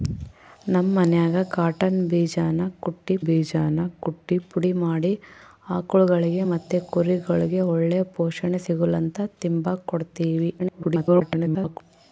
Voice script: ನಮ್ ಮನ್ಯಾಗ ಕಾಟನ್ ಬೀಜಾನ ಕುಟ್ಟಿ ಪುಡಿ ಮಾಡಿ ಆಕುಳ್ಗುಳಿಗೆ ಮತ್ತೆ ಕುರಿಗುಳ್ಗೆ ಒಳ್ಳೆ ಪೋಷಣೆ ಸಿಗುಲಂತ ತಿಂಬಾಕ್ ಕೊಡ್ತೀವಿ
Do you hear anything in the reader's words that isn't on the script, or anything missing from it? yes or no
yes